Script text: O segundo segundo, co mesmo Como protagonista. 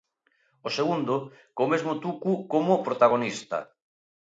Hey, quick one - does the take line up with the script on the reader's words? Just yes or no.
no